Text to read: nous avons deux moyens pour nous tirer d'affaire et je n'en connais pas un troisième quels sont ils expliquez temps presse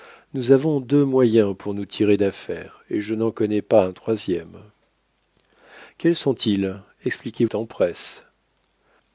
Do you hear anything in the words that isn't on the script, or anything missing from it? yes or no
no